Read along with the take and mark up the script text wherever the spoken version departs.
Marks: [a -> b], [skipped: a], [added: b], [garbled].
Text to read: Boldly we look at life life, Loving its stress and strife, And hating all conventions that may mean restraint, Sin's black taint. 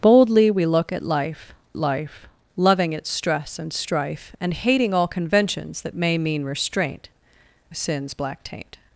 Boldly we look at life life, Loving its stress and strife, And hating all conventions that may mean restraint, Sin's black taint.